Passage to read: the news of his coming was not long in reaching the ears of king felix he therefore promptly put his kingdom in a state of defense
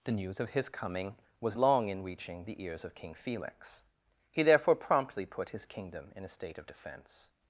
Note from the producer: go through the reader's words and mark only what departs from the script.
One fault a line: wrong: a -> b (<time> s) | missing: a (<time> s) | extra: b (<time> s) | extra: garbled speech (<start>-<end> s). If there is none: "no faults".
missing: not (1.6 s)